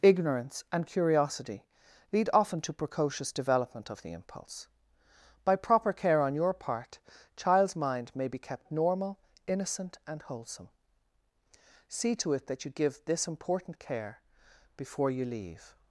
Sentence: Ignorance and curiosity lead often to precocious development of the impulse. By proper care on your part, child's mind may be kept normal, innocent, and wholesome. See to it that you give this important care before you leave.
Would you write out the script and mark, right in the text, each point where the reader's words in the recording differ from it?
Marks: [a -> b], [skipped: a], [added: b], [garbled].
Ignorance and curiosity lead often to precocious development of the impulse. By proper care on your part, child's mind may be kept normal, innocent, and wholesome. See to it that you give this important care before you leave.